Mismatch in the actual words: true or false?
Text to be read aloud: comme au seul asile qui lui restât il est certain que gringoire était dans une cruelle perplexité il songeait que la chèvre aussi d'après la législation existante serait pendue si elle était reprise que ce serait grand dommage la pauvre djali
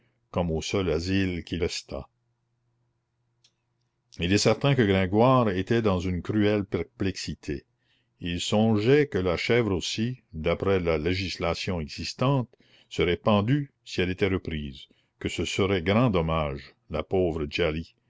true